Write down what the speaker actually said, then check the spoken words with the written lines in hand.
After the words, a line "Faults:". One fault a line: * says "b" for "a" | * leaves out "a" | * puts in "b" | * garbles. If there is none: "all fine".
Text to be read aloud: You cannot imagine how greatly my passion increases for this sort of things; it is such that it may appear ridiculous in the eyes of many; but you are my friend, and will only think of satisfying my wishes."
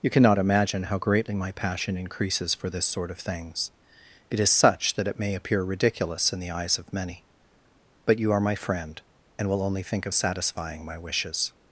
You cannot imagine how greatly my passion increases for this sort of things; it is such that it may appear ridiculous in the eyes of many; but you are my friend, and will only think of satisfying my wishes."
Faults:
all fine